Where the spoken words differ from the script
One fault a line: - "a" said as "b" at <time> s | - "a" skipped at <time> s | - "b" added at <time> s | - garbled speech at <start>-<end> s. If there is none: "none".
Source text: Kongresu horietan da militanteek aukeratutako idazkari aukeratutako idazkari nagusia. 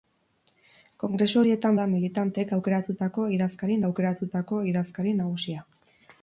none